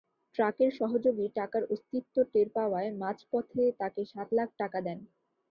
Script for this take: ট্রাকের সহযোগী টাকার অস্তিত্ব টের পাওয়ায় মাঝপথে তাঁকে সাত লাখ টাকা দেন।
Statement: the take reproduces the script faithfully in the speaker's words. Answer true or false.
true